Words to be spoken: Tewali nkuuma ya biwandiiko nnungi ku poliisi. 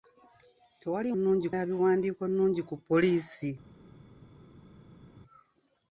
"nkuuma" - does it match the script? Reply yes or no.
no